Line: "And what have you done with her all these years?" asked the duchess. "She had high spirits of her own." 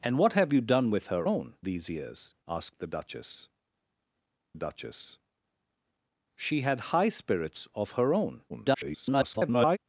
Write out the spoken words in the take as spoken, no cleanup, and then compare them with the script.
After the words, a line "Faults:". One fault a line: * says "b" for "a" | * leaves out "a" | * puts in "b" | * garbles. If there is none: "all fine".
"And what have you done with her own these years?" asked the duchess duchess. "She had high spirits of her own." [garbled]
Faults:
* says "own" for "all"
* puts in "duchess"
* garbles